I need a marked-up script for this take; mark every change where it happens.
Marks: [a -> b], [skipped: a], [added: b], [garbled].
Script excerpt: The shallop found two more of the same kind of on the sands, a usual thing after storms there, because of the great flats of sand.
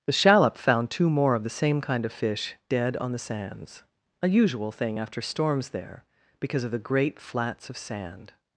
The shallop found two more of the same kind of [added: fish dead] on the sands, a usual thing after storms there, because of the great flats of sand.